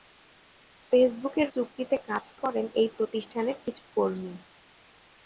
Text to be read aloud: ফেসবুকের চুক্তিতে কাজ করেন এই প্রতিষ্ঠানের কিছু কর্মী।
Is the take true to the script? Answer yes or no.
yes